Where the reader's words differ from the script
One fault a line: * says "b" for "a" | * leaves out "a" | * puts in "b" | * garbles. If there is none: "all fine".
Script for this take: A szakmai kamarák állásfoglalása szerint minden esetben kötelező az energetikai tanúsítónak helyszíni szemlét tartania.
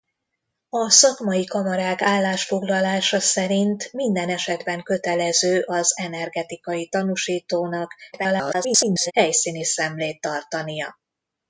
* garbles